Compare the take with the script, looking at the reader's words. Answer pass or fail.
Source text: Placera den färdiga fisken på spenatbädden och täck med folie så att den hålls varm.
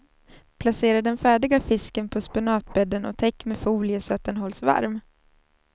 pass